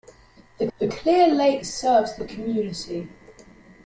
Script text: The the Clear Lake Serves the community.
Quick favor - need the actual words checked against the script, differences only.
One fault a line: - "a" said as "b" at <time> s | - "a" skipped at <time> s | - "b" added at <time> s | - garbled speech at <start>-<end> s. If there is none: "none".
none